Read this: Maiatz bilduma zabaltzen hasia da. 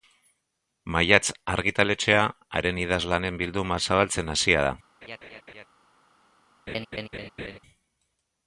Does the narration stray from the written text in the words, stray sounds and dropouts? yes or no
yes